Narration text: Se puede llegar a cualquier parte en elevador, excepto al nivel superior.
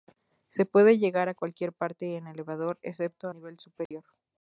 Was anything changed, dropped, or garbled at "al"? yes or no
yes